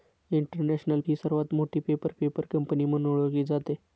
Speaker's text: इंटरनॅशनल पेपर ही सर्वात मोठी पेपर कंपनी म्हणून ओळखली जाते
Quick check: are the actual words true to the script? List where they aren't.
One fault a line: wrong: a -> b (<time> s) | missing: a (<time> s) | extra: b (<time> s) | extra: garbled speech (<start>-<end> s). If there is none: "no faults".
missing: पेपर (1.0 s)
extra: पेपर (2.1 s)